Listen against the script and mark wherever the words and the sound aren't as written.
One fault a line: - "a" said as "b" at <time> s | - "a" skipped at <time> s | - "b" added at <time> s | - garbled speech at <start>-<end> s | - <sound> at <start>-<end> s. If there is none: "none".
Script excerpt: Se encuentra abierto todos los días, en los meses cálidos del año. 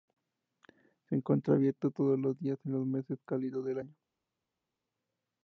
none